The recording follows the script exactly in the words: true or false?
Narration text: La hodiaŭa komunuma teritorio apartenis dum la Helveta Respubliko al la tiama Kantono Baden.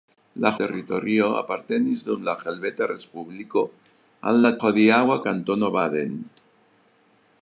false